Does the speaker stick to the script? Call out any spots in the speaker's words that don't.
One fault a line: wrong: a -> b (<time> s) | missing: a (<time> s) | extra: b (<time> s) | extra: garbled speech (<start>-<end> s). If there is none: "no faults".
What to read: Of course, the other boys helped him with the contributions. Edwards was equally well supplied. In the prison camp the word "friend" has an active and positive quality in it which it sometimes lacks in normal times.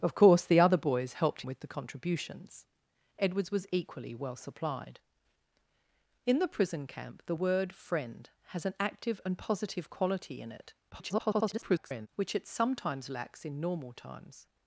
missing: him (1.4 s)
extra: garbled speech (10.9-12.1 s)